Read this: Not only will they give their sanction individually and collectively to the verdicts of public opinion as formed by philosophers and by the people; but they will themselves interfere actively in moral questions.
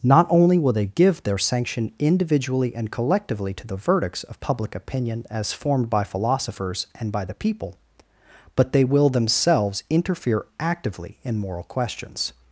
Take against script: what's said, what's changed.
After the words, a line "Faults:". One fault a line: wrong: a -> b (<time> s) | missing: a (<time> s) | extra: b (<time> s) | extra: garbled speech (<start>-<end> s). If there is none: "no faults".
Not only will they give their sanction individually and collectively to the verdicts of public opinion as formed by philosophers and by the people; but they will themselves interfere actively in moral questions.
Faults:
no faults